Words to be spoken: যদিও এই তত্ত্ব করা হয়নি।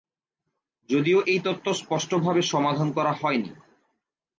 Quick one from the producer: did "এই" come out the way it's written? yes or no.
yes